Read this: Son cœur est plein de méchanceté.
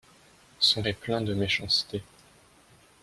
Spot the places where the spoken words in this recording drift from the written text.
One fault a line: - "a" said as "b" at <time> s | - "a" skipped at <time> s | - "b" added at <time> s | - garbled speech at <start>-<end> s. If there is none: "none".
- "cœur" skipped at 0.8 s